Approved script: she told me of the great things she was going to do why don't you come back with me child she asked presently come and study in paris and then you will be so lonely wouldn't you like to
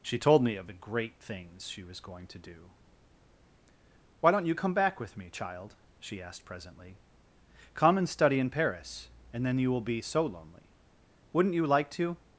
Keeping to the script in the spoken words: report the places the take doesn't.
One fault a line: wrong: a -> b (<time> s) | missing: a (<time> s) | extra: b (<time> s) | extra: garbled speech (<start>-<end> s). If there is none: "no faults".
no faults